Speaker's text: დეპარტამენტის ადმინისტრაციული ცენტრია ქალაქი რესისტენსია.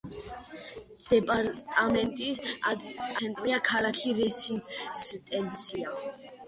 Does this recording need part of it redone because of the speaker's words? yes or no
yes